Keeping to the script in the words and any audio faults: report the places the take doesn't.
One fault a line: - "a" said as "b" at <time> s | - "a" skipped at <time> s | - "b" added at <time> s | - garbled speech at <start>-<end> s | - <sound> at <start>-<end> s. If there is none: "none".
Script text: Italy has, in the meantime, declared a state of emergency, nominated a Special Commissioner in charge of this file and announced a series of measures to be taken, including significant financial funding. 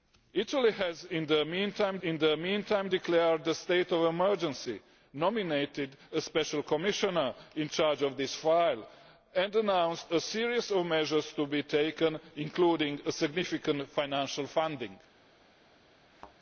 - "in the meantime" added at 2.0 s
- thud at 16.1-16.4 s